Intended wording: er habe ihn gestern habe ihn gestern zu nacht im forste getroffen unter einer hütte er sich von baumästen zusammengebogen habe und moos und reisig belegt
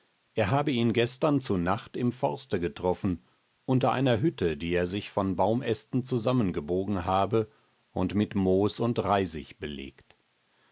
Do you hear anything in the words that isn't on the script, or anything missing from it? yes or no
yes